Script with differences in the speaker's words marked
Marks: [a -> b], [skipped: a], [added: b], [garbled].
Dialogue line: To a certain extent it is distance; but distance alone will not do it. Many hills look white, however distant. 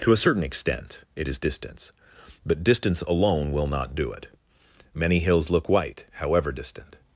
To a certain extent it is distance; but distance alone will not do it. Many hills look white, however distant.